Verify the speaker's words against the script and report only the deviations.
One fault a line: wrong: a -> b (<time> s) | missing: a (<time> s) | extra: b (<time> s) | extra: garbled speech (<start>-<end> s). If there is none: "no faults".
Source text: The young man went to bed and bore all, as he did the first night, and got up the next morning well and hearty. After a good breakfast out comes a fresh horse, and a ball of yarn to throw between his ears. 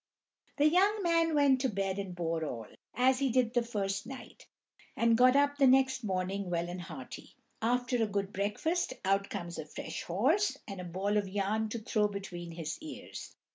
no faults